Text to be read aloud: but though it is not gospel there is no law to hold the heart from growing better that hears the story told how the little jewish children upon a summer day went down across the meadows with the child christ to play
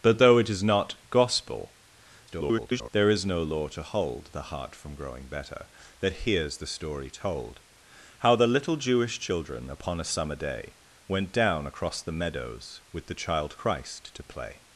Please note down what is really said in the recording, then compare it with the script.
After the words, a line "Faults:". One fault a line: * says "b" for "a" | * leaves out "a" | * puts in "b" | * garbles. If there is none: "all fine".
but though it is not gospel [garbled] there is no law to hold the heart from growing better that hears the story told how the little jewish children upon a summer day went down across the meadows with the child christ to play
Faults:
* garbles